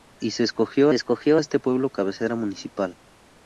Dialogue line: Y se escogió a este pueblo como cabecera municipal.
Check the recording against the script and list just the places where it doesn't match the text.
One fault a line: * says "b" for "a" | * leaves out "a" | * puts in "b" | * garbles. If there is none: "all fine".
* puts in "escogió"
* leaves out "como"